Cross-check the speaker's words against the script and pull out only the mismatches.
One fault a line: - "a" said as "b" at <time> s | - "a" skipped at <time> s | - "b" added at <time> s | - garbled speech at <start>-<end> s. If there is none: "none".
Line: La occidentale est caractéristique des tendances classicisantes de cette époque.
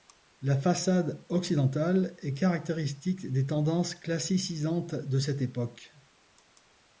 - "façade" added at 0.6 s